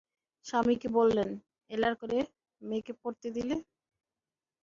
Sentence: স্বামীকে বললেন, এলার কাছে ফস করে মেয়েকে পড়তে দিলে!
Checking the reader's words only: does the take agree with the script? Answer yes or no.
no